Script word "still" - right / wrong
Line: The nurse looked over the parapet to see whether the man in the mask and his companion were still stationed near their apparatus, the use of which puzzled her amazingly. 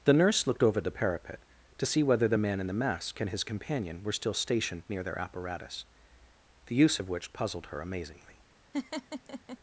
right